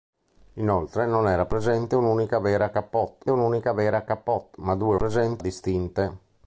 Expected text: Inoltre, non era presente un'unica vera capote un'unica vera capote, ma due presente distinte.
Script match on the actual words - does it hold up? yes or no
yes